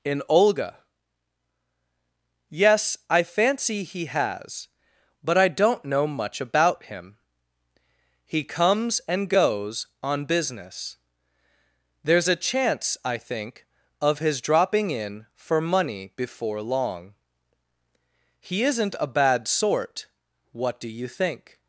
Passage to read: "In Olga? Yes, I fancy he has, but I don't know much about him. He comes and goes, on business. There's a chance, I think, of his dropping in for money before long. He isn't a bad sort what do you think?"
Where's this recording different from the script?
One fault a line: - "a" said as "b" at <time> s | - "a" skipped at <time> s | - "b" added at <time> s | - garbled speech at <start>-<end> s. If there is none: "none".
none